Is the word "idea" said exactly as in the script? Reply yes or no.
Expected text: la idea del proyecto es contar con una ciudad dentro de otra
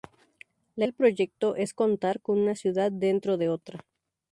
no